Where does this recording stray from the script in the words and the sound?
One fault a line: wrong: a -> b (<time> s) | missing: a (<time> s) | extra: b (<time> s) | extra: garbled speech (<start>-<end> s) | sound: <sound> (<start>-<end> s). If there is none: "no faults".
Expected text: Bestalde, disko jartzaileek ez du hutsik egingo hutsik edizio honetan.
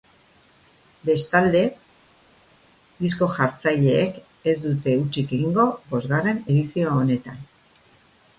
wrong: du -> dute (4.7 s)
wrong: hutsik -> bosgarren (5.9 s)